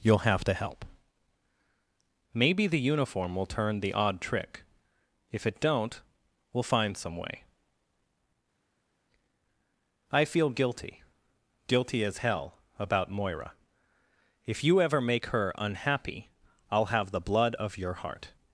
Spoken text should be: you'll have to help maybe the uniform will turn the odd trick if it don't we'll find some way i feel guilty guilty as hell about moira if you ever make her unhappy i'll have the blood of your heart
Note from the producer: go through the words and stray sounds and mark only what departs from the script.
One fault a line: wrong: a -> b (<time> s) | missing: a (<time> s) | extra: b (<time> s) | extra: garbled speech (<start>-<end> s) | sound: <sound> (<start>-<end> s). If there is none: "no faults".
no faults